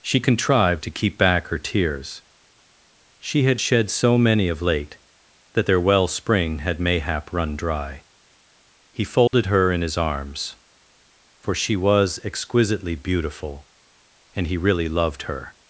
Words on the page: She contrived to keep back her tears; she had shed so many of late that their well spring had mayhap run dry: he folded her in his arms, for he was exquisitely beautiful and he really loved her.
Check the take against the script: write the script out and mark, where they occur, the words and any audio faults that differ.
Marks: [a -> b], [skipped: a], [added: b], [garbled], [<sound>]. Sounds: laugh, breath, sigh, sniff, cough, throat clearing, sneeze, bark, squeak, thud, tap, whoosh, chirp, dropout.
She contrived to keep back her tears; she had shed so many of late that their well spring had mayhap run dry: he folded [dropout] her in his arms, for [he -> she] was exquisitely beautiful and he really loved her.